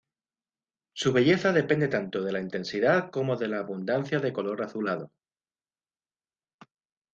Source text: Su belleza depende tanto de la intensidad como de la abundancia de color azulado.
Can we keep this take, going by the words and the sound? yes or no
yes